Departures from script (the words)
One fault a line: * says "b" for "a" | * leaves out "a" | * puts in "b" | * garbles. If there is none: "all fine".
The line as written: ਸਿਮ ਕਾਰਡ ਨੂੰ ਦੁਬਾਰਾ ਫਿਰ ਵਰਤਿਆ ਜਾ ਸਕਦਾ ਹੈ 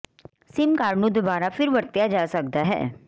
all fine